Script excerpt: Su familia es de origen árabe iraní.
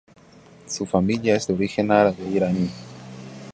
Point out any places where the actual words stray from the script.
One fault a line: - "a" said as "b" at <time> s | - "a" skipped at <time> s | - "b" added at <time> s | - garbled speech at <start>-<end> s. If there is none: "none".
none